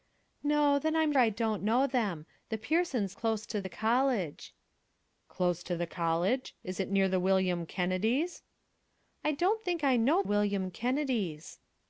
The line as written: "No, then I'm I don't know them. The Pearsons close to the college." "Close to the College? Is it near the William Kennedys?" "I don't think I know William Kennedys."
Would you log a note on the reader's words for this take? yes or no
no